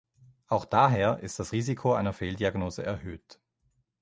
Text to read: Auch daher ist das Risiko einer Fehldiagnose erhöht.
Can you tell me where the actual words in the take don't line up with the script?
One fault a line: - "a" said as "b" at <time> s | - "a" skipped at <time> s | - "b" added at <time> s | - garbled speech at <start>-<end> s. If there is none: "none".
none